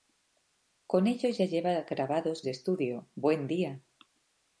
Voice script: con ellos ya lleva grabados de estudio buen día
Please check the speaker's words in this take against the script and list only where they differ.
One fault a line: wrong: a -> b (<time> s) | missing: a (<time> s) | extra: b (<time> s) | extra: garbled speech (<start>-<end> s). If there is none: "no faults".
no faults